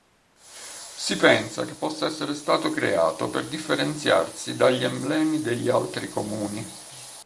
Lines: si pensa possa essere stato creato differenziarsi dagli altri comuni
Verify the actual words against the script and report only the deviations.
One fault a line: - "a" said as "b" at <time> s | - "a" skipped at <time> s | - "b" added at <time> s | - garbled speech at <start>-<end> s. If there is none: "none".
- "che" added at 1.6 s
- "per" added at 3.3 s
- "emblemi degli" added at 4.8 s